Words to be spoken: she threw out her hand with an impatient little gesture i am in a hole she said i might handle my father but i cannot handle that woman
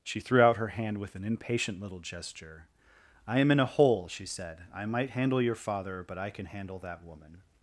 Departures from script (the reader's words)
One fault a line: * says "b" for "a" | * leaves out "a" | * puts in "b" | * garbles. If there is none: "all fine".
* says "your" for "my"
* says "can" for "cannot"